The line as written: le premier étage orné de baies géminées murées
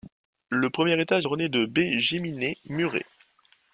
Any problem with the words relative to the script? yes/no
no